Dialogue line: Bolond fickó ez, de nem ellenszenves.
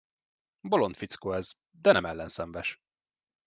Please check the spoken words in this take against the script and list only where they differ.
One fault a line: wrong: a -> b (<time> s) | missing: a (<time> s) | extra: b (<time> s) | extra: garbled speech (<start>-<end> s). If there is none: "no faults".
no faults